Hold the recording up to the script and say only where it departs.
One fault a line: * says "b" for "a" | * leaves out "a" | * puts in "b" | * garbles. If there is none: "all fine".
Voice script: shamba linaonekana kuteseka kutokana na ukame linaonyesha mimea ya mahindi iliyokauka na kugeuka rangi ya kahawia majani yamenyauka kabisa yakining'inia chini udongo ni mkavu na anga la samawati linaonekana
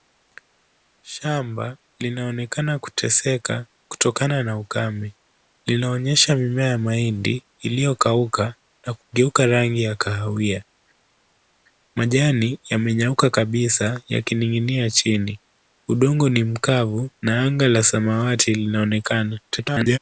* garbles